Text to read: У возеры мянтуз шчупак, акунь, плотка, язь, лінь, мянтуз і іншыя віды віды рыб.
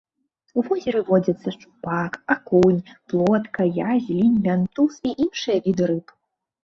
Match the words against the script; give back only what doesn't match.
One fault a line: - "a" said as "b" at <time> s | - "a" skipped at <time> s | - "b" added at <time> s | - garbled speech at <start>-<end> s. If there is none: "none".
- "мянтуз" said as "водзяцца" at 1.1 s
- "віды" skipped at 5.8 s